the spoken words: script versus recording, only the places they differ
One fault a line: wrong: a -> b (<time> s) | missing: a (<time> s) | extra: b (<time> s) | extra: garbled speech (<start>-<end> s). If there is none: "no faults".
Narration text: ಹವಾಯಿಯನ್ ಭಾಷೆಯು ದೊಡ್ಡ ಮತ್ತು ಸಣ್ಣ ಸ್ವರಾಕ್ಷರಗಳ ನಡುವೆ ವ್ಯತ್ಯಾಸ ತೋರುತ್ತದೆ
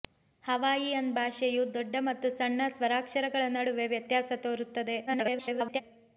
extra: garbled speech (5.1-5.8 s)